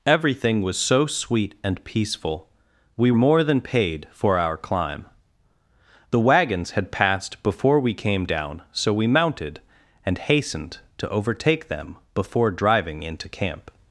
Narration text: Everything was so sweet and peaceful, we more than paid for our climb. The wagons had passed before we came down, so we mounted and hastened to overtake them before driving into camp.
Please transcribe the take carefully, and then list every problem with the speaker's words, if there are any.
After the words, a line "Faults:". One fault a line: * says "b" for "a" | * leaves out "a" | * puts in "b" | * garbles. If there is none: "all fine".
Everything was so sweet and peaceful, we more than paid for our climb. The wagons had passed before we came down, so we mounted and hastened to overtake them before driving into camp.
Faults:
all fine